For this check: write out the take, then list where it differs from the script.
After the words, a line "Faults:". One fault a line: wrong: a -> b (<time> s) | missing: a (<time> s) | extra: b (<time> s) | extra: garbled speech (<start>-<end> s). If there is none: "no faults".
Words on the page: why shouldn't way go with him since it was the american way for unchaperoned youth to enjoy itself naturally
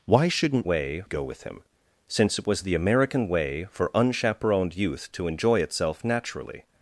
why shouldn't way go with him since it was the american way for unchaperoned youth to enjoy itself naturally
Faults:
no faults